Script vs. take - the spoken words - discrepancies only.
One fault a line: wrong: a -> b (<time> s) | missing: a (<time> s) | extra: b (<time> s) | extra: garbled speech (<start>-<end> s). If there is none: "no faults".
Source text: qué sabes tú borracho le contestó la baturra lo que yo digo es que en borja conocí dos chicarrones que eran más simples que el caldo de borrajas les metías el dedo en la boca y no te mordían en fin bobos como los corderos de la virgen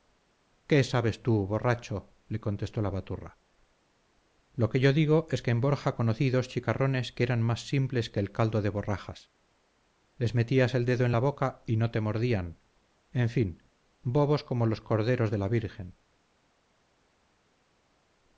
no faults